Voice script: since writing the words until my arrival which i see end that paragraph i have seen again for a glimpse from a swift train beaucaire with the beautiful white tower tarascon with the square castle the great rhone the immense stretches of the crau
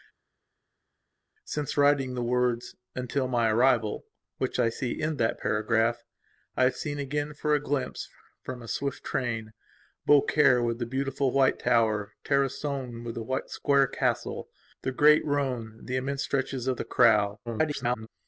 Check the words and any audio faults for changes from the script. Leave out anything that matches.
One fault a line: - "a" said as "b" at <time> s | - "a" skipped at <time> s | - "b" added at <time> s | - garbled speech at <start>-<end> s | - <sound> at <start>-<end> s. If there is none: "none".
- garbled speech at 17.5-18.1 s